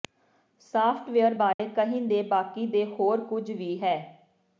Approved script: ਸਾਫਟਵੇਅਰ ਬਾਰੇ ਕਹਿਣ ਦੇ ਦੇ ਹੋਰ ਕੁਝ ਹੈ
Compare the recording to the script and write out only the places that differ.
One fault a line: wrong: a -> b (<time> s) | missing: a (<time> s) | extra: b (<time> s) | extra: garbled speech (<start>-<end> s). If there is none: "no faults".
extra: ਬਾਕੀ (2.2 s)
extra: ਵੀ (3.5 s)